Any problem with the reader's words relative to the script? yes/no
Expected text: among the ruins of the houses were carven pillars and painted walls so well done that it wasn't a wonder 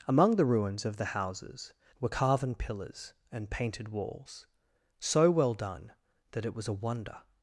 yes